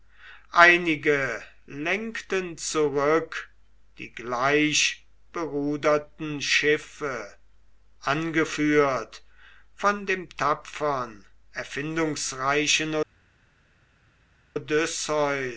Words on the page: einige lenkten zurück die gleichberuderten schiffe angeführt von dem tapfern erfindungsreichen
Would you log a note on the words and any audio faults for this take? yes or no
no